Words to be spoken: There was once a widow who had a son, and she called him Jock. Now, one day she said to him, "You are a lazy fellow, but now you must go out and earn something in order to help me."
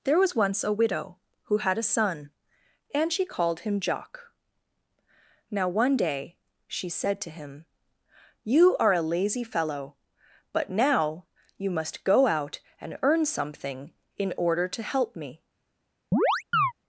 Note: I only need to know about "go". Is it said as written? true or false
true